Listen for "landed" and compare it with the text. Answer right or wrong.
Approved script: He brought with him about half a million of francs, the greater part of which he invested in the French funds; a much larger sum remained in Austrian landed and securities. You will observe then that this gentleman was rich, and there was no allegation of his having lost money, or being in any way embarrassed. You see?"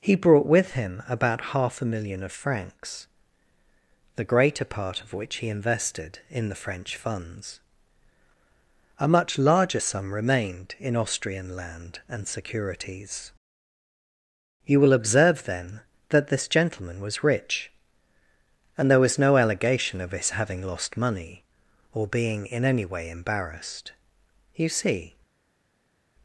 wrong